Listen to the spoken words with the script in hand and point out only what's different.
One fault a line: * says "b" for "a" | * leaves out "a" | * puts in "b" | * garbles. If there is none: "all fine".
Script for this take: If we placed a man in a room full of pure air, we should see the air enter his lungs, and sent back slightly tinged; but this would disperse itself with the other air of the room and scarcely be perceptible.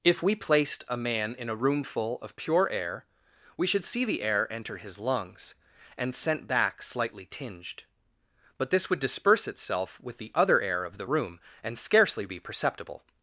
all fine